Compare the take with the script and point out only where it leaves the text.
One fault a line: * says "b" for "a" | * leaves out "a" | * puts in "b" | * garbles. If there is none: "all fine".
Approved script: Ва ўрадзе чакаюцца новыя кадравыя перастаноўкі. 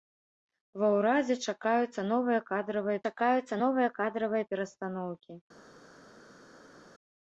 * puts in "чакаюцца новыя кадравыя"